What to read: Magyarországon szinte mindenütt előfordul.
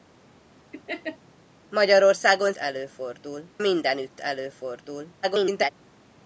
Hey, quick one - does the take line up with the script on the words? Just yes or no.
no